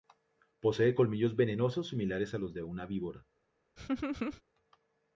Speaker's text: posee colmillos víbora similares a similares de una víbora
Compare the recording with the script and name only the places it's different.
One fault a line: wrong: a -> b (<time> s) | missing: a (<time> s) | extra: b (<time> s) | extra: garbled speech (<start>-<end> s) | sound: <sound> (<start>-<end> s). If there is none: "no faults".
wrong: víbora -> venenosos (1.4 s)
wrong: similares -> los (2.4 s)
sound: laugh (3.8-4.4 s)